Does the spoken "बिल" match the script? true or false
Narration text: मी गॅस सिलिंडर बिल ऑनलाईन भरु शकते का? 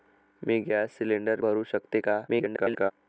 false